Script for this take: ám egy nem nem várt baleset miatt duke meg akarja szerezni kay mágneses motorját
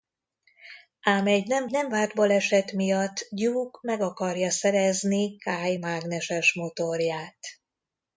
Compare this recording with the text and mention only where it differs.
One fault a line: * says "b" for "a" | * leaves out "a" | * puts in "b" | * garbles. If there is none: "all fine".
all fine